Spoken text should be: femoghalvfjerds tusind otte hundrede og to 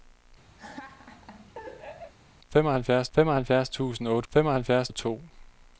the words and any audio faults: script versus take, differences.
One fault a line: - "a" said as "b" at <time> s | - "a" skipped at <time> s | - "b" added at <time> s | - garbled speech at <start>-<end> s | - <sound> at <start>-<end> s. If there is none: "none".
- laugh at 0.6-2.1 s
- "femoghalvfjerds" added at 3.1 s
- "hundrede" said as "femoghalvfjerds" at 4.3 s